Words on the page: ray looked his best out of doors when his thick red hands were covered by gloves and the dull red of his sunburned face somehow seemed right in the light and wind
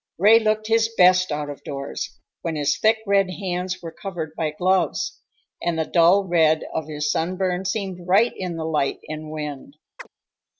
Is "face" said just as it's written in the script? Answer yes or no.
no